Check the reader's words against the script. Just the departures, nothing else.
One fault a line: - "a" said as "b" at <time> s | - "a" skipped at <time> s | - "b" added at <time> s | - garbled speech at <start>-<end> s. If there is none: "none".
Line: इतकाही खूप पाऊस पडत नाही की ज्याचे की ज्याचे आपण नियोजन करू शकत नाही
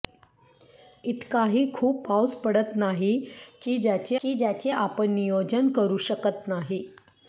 none